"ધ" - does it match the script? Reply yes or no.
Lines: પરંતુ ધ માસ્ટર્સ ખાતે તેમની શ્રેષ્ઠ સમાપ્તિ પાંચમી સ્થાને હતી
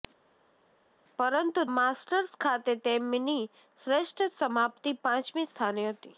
no